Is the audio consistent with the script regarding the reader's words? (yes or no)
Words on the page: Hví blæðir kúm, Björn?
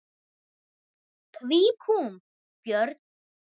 no